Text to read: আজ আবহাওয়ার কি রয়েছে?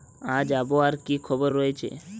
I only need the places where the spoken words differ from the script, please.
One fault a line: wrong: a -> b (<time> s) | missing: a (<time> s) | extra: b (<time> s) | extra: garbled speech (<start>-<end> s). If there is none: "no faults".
extra: খবর (1.2 s)